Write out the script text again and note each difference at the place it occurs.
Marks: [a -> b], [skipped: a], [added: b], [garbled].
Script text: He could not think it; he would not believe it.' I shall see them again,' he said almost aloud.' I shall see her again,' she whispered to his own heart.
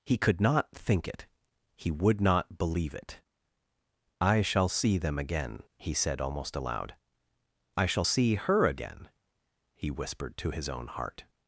He could not think it; he would not believe it.' I shall see them again,' he said almost aloud.' I shall see her again,' [she -> he] whispered to his own heart.